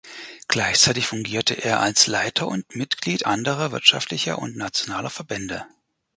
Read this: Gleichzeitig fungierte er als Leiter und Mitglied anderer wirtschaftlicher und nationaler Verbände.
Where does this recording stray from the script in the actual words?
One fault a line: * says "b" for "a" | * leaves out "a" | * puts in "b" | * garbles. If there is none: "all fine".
all fine